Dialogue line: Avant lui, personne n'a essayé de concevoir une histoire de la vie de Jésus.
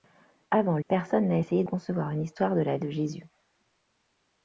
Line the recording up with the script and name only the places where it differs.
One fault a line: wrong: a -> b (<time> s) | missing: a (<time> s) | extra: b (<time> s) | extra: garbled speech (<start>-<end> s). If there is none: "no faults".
missing: lui (0.8 s)
missing: de (1.6 s)
missing: vie (2.8 s)